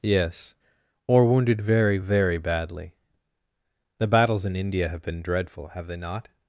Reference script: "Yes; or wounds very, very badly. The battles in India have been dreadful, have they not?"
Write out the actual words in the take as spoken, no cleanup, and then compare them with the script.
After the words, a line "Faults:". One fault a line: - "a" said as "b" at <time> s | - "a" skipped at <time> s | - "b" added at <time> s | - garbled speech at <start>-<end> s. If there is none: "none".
"Yes; or wounded very, very badly. The battles in India have been dreadful, have they not?"
Faults:
- "wounds" said as "wounded" at 1.2 s